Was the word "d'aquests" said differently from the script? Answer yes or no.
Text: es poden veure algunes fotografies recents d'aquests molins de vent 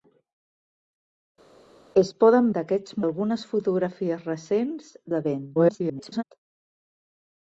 yes